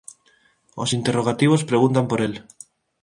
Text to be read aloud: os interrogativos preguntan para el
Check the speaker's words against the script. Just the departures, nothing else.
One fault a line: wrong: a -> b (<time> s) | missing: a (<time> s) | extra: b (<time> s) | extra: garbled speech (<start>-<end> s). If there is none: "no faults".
wrong: para -> por (2.1 s)